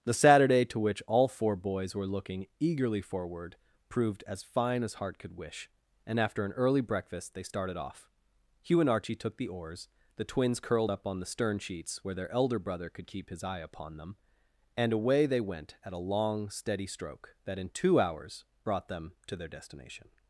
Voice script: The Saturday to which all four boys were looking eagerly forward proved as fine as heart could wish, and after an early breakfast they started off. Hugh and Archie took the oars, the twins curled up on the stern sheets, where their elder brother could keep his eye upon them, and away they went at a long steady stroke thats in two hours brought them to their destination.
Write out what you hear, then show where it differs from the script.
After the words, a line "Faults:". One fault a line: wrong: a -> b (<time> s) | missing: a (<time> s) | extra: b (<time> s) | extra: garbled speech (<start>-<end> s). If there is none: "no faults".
The Saturday to which all four boys were looking eagerly forward proved as fine as heart could wish, and after an early breakfast they started off. Hugh and Archie took the oars, the twins curled up on the stern sheets, where their elder brother could keep his eye upon them, and away they went at a long steady stroke that in two hours brought them to their destination.
Faults:
wrong: thats -> that (17.5 s)